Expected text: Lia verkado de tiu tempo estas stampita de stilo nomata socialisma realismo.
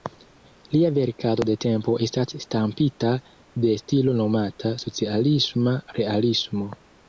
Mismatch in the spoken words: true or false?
true